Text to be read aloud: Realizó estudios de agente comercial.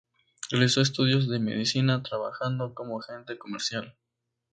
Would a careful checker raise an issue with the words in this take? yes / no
yes